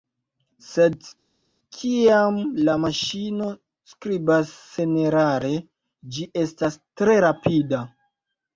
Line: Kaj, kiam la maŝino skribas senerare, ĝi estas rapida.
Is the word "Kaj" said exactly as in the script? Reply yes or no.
no